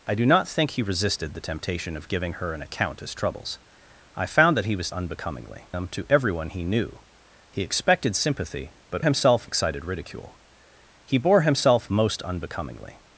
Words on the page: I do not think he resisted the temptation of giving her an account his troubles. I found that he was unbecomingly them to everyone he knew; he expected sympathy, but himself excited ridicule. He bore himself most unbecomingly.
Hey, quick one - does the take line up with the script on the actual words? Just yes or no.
yes